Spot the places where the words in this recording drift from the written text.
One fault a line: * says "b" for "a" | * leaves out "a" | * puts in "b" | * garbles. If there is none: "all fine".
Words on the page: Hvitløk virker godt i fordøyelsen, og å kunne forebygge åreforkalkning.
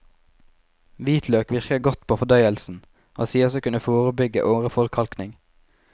* says "på" for "i"
* puts in "sies"